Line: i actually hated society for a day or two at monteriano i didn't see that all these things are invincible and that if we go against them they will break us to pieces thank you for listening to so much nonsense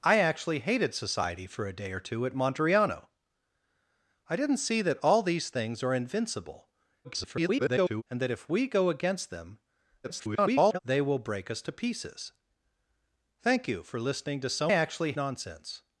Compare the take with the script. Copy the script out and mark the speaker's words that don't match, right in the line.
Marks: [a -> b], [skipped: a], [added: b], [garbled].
i actually hated society for a day or two at monteriano i didn't see that all these things are invincible [garbled] and that if we go against them [garbled] they will break us to pieces thank you for listening to so [much -> actually] nonsense